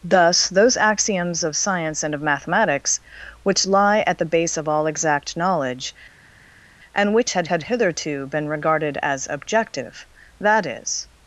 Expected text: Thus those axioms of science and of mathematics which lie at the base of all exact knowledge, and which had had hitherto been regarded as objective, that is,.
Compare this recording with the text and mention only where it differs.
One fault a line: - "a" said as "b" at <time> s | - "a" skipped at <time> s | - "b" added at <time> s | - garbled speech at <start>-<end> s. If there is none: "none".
none